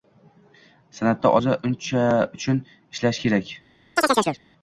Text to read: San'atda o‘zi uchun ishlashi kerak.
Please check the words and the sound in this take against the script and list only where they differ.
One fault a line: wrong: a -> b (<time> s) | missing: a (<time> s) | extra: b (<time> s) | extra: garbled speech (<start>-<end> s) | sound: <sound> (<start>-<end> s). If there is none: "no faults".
sound: chirp (4.0-4.4 s)